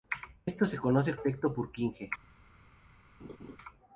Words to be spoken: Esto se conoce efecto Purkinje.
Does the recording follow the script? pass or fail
pass